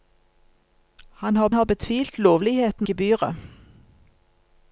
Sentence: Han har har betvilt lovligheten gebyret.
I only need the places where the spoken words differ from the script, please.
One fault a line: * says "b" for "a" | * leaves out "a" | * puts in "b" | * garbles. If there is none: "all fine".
all fine